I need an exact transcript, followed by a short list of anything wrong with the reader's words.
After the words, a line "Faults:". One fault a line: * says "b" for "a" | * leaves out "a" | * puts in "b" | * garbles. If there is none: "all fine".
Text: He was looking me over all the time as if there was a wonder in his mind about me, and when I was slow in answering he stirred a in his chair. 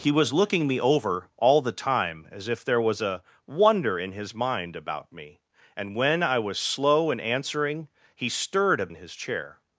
He was looking me over all the time as if there was a wonder in his mind about me, and when I was slow in answering he stirred a in his chair.
Faults:
all fine